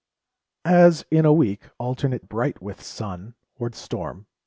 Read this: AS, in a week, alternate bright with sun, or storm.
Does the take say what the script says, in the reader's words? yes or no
yes